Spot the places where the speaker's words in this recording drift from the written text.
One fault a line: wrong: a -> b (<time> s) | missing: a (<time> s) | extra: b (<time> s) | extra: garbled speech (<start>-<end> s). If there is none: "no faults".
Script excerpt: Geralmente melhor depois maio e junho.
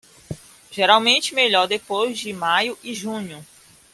extra: de (2.2 s)